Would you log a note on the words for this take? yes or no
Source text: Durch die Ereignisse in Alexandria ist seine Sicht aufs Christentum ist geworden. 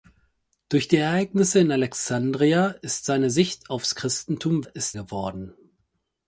no